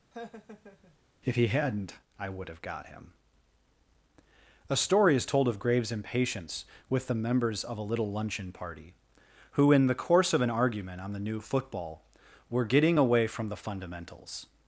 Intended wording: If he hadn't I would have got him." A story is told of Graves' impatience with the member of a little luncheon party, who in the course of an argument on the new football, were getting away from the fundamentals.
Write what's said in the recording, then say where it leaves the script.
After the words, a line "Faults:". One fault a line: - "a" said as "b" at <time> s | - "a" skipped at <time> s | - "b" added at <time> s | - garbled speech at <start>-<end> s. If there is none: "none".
If he hadn't I would have got him." A story is told of Graves' impatience with the members of a little luncheon party, who in the course of an argument on the new football, were getting away from the fundamentals.
Faults:
- "member" said as "members" at 7.1 s